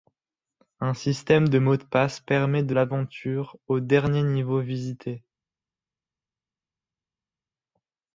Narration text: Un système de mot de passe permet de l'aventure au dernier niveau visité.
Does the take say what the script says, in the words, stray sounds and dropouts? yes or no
yes